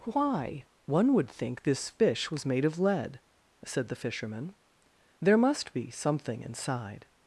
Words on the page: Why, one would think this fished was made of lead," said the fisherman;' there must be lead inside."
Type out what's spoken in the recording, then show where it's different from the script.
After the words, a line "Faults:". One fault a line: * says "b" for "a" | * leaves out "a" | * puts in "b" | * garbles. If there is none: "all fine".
Why, one would think this fish was made of lead," said the fisherman;' there must be something inside."
Faults:
* says "fish" for "fished"
* says "something" for "lead"